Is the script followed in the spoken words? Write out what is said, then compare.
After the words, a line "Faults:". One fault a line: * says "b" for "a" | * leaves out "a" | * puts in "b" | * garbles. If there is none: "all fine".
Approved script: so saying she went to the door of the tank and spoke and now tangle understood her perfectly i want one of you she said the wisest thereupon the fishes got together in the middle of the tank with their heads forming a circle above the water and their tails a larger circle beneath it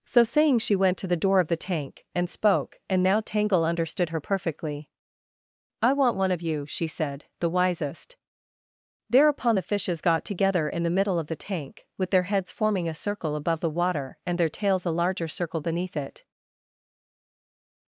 so saying she went to the door of the tank and spoke and now tangle understood her perfectly i want one of you she said the wisest thereupon the fishes got together in the middle of the tank with their heads forming a circle above the water and their tails a larger circle beneath it
Faults:
all fine